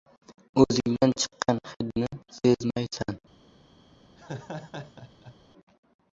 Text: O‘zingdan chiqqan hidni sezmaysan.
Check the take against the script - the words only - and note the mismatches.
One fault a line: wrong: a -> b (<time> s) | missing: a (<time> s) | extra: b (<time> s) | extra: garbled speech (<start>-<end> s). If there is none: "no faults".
no faults